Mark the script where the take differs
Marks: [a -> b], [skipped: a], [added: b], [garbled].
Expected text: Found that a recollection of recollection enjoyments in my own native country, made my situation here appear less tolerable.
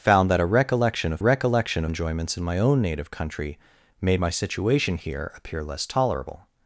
Found that a recollection of recollection enjoyments in my own native country, made my situation here appear less tolerable.